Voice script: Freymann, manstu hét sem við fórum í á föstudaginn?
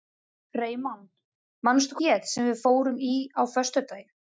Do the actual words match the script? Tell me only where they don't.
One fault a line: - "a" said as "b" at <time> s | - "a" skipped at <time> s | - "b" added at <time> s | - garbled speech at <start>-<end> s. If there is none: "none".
none